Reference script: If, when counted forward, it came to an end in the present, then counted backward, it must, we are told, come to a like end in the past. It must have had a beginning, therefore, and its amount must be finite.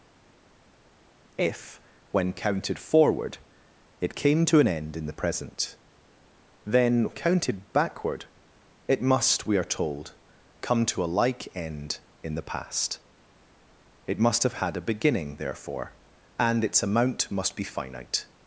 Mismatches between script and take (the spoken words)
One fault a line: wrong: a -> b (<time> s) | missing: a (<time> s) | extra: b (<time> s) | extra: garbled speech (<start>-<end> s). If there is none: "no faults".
no faults